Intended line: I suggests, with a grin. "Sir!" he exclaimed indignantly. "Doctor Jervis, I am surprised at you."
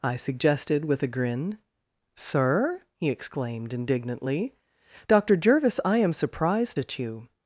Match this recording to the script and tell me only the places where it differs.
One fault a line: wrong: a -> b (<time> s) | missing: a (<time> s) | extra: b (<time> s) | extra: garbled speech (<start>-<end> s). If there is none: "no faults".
wrong: suggests -> suggested (0.1 s)